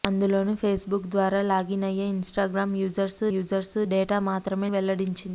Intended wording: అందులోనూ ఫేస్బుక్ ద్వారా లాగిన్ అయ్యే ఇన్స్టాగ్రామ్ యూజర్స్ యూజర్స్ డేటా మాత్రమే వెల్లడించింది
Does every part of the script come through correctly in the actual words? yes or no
yes